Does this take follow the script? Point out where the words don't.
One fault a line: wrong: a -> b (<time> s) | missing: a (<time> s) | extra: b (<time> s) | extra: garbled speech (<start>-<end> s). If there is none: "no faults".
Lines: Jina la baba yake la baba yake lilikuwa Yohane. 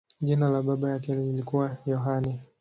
missing: la baba yake (1.1 s)